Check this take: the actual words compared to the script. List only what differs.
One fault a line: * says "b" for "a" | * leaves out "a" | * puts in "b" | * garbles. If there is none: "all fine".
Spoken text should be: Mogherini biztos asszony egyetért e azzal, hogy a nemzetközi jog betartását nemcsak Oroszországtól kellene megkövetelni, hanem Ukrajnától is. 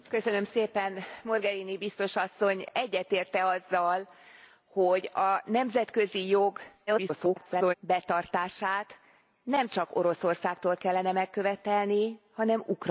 * garbles